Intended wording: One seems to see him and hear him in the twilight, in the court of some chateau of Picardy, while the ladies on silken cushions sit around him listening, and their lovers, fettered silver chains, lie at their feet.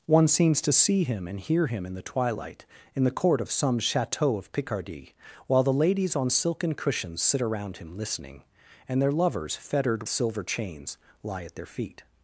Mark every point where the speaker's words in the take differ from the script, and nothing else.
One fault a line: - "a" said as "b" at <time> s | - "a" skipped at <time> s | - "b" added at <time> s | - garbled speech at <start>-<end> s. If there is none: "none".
none